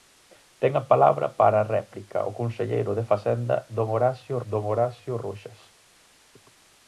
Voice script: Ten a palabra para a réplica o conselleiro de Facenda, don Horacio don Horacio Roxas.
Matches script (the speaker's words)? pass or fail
pass